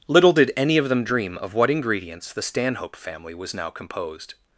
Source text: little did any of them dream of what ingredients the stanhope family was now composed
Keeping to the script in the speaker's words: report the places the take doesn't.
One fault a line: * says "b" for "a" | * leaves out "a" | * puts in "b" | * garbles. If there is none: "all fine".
all fine